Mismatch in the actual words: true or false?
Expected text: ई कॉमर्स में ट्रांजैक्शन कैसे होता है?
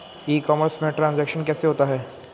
false